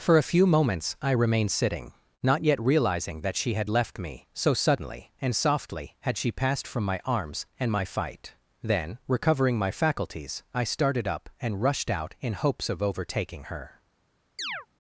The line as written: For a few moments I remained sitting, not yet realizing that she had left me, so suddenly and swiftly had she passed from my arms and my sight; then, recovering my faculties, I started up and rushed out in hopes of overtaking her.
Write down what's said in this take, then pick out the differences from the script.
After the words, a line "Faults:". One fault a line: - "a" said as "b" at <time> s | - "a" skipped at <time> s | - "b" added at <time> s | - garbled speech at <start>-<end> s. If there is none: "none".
For a few moments I remained sitting, not yet realizing that she had left me, so suddenly and softly had she passed from my arms and my fight; then, recovering my faculties, I started up and rushed out in hopes of overtaking her.
Faults:
- "swiftly" said as "softly" at 5.4 s
- "sight" said as "fight" at 7.8 s